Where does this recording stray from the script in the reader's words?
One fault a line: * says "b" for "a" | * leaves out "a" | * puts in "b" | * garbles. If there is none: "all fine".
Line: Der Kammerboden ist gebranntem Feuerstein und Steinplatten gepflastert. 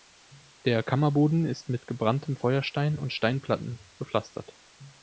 * puts in "mit"